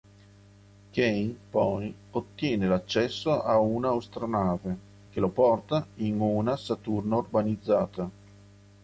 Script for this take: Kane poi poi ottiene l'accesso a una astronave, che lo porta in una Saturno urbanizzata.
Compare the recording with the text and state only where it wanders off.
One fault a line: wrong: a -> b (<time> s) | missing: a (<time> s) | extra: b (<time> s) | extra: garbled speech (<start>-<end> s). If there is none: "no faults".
missing: poi (1.9 s)